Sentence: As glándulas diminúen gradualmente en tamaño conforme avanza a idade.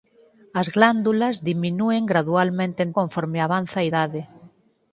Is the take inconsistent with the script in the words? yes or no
yes